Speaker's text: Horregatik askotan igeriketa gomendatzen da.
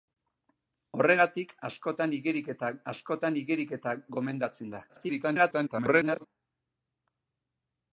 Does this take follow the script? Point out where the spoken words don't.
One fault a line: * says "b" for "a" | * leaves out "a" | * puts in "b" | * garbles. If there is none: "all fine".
* puts in "askotan igeriketa"
* garbles